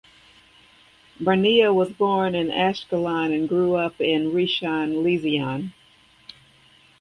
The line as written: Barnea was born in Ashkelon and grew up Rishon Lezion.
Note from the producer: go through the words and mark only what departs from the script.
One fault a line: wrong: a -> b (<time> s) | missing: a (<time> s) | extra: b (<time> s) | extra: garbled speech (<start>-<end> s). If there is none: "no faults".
extra: in (4.0 s)